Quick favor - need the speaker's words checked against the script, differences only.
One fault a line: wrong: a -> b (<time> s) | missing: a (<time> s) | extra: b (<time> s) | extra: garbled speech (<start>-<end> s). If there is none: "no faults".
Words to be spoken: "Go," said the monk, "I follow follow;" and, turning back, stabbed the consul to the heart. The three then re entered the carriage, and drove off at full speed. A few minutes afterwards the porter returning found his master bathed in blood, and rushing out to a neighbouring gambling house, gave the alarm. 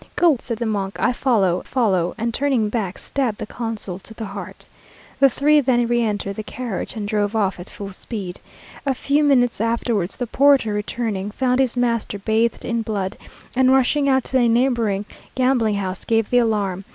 no faults